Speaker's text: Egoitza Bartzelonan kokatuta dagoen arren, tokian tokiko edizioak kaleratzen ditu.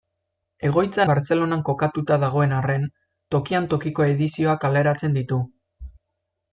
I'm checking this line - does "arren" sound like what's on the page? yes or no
yes